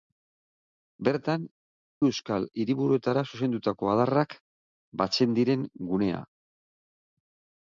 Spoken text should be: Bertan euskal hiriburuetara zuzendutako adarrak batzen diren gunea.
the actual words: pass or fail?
pass